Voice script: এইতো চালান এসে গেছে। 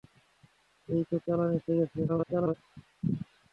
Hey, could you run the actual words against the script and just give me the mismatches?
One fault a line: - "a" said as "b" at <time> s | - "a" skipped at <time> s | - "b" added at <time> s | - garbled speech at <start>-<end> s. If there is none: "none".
- garbled speech at 2.1-2.5 s